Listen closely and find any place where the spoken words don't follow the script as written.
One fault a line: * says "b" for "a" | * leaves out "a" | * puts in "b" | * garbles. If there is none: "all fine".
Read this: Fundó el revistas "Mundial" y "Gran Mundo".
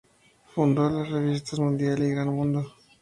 * says "las" for "el"